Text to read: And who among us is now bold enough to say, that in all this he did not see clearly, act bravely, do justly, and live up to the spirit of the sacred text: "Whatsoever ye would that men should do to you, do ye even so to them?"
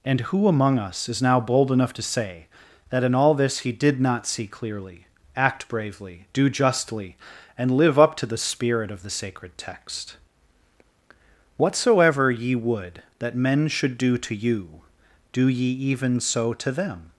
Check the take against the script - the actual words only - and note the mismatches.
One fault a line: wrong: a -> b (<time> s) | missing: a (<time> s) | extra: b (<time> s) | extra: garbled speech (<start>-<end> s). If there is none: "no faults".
no faults